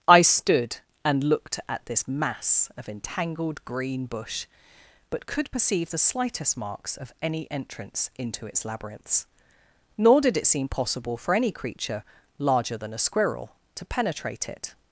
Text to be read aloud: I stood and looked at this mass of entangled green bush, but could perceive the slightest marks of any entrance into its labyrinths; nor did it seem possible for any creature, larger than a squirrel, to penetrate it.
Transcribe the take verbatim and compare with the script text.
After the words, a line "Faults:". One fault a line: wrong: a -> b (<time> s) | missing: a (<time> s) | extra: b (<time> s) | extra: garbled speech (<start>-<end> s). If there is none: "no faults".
I stood and looked at this mass of entangled green bush, but could perceive the slightest marks of any entrance into its labyrinths; nor did it seem possible for any creature, larger than a squirrel, to penetrate it.
Faults:
no faults